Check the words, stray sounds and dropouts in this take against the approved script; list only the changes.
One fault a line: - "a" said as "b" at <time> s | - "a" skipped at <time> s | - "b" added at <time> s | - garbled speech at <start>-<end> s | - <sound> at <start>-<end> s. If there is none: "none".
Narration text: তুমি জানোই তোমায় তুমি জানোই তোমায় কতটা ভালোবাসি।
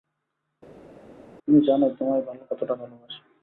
- "তুমি জানোই তোমায়" skipped at 2.2 s